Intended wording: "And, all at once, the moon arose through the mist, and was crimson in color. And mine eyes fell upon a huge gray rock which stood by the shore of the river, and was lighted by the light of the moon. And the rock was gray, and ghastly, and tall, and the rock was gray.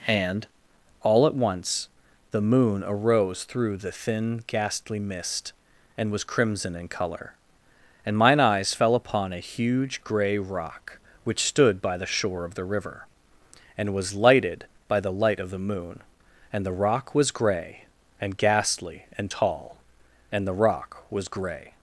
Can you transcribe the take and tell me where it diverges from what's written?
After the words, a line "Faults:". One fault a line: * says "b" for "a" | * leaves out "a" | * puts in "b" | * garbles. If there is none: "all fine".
"And, all at once, the moon arose through the thin ghastly mist, and was crimson in color. And mine eyes fell upon a huge gray rock which stood by the shore of the river, and was lighted by the light of the moon. And the rock was gray, and ghastly, and tall, and the rock was gray.
Faults:
* puts in "thin ghastly"